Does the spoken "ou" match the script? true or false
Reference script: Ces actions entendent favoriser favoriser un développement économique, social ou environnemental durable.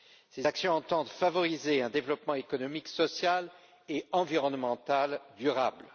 false